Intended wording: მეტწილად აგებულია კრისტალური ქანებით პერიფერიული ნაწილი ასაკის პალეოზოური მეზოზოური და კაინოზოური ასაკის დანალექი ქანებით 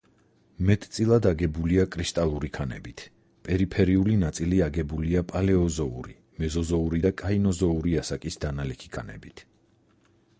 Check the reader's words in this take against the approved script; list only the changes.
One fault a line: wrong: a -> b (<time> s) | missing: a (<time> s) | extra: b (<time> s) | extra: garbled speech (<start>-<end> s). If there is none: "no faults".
wrong: ასაკის -> აგებულია (4.7 s)